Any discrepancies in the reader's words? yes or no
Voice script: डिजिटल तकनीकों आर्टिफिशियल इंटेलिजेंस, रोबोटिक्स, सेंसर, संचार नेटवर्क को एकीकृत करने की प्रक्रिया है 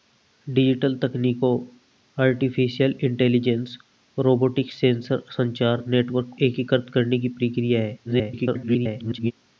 yes